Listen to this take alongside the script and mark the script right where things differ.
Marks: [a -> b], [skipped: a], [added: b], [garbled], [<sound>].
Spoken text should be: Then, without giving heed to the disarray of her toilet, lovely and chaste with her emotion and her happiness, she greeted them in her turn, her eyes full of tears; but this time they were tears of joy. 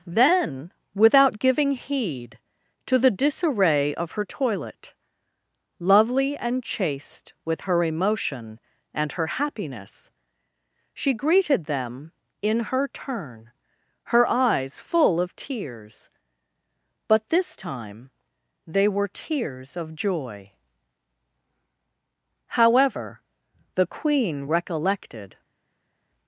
Then, without giving heed to the disarray of her toilet, lovely and chaste with her emotion and her happiness, she greeted them in her turn, her eyes full of tears; but this time they were tears of joy. [added: However the queen recollected]